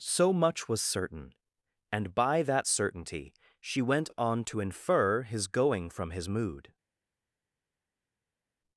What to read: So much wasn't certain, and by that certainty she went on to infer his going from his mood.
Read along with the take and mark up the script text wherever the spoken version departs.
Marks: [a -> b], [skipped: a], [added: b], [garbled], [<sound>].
So much [wasn't -> was] certain, and by that certainty she went on to infer his going from his mood.